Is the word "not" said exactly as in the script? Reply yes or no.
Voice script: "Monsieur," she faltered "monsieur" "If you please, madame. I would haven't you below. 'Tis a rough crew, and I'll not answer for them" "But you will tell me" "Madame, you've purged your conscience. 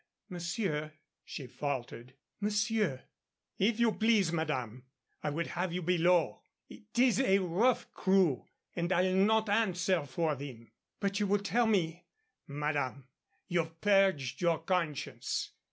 yes